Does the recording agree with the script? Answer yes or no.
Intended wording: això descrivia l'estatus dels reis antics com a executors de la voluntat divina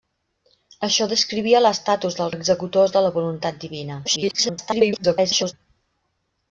no